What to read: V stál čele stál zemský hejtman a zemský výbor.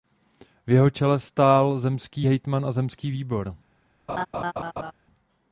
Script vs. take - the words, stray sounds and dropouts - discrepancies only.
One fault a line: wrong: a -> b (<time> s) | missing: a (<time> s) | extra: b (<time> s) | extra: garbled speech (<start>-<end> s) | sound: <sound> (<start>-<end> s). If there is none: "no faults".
wrong: stál -> jeho (0.7 s)
sound: laugh (4.1-4.9 s)